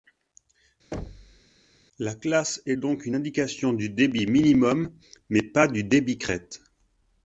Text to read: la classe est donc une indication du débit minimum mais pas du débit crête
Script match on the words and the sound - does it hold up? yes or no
no